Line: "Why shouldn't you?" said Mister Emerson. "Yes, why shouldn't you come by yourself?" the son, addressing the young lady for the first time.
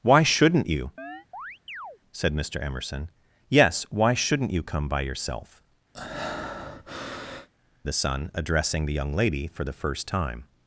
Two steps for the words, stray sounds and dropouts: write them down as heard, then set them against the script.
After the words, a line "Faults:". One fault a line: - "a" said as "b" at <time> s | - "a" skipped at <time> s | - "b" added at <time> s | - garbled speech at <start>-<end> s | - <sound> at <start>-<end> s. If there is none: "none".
"Why shouldn't you?" said Mister Emerson. "Yes, why shouldn't you come by yourself?" the son, addressing the young lady for the first time.
Faults:
- chirp at 1.0-2.0 s
- breath at 5.9-7.5 s